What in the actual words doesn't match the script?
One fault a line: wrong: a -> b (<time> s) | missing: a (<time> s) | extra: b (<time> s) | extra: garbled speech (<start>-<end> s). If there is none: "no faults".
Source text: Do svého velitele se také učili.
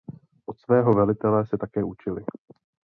wrong: Do -> Od (0.5 s)